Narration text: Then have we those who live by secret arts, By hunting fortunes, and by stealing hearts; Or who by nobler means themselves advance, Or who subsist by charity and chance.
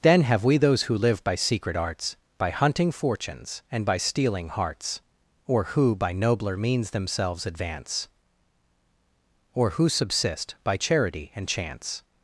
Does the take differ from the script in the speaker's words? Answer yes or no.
no